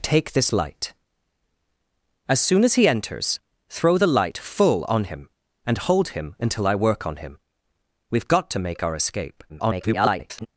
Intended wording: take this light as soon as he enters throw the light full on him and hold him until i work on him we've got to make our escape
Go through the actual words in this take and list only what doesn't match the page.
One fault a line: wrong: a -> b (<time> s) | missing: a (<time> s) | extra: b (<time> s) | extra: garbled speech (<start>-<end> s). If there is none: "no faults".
extra: garbled speech (9.5-10.5 s)